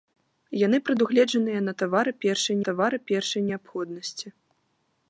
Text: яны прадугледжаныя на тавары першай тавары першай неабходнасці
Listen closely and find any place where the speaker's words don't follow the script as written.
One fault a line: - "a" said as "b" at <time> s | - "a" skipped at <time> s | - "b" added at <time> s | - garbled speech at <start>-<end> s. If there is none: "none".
none